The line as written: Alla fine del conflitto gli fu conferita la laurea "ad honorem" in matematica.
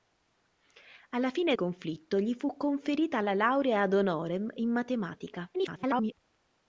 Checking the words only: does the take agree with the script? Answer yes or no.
no